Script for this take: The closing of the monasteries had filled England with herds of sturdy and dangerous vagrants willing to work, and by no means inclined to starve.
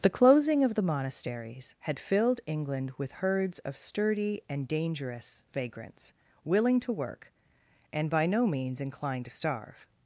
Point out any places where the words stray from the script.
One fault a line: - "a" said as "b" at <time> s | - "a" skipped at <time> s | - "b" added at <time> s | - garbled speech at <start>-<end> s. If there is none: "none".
none